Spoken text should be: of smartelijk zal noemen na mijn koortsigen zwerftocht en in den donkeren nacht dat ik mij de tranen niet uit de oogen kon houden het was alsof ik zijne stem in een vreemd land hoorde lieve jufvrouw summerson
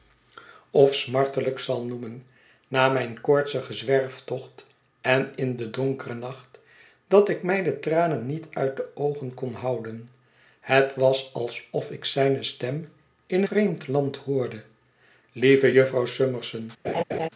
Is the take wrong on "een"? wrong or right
wrong